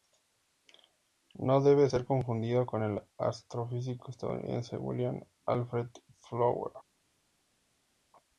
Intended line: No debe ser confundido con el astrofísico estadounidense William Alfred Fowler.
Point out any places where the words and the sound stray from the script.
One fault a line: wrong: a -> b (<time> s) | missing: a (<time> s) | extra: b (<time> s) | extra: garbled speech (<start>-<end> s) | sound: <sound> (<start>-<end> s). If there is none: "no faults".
no faults